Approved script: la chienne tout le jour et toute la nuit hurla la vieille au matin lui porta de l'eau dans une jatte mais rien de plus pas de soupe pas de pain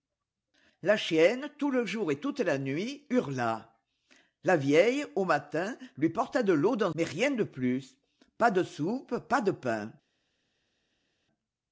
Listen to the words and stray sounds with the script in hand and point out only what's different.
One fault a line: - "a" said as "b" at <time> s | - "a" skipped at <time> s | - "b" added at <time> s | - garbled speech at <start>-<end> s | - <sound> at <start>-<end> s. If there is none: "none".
- "une jatte" skipped at 6.9 s